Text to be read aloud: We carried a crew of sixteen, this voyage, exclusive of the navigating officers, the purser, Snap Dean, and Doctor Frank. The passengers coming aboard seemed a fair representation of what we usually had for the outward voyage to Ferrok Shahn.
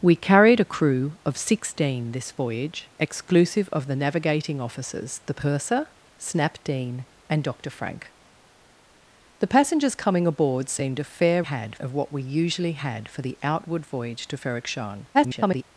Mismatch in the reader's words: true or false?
true